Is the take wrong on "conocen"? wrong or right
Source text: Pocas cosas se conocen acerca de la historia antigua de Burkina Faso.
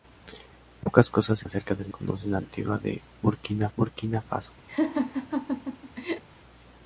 wrong